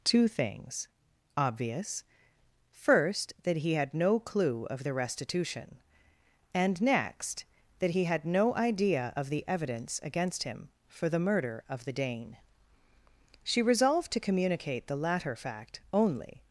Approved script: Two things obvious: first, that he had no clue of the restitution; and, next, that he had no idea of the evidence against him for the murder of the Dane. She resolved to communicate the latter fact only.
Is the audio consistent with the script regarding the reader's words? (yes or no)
yes